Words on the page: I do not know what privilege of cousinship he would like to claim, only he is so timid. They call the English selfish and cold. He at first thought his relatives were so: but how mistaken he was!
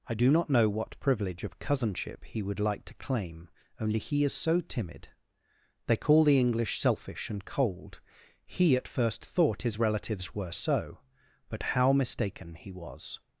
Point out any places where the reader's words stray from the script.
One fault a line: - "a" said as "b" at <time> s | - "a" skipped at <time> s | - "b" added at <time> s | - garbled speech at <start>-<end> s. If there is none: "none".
none